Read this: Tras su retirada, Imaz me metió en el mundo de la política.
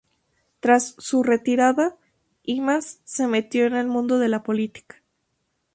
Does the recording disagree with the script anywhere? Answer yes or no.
yes